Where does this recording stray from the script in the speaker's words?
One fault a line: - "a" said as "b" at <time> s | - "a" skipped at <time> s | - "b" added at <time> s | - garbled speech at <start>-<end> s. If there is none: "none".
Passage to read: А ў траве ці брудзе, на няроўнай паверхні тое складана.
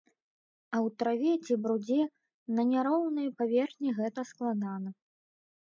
- "тое" said as "гэта" at 4.0 s